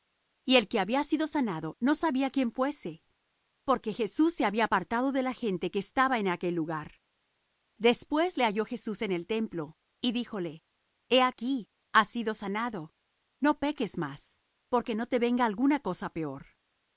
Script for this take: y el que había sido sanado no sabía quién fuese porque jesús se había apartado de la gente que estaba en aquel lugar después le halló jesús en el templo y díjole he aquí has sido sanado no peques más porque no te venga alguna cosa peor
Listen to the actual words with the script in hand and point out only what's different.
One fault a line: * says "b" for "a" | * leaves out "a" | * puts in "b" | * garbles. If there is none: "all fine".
all fine